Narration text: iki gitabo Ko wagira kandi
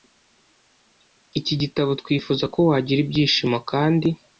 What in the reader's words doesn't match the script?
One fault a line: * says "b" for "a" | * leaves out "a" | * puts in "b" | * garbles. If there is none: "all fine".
* puts in "Twifuza"
* puts in "ibyishimo"